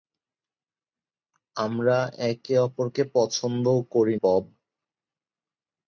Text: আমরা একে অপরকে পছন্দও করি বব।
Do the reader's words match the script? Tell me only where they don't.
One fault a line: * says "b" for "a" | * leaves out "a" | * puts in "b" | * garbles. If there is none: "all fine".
all fine